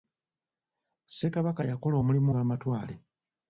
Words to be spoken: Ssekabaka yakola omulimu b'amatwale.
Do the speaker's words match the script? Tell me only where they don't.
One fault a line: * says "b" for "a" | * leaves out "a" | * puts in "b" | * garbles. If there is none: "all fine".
all fine